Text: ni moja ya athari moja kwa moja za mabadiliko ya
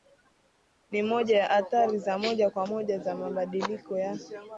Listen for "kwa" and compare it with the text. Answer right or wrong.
right